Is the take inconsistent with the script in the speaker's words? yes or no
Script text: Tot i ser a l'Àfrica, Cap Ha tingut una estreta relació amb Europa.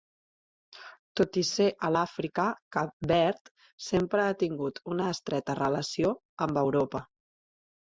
yes